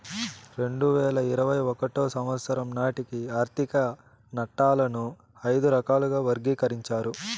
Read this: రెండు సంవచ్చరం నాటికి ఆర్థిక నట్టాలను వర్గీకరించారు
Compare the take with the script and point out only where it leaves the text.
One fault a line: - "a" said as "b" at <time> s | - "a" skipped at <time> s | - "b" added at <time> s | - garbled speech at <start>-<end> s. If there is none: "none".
- "వేల ఇరవై ఒకటో" added at 0.9 s
- "ఐదు రకాలుగా" added at 5.5 s